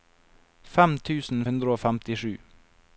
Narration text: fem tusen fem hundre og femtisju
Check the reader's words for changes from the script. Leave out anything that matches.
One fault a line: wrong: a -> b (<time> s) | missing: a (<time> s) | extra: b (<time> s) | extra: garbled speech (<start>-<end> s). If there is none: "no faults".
missing: fem (1.4 s)